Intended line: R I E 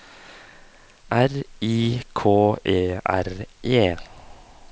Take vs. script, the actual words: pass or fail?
fail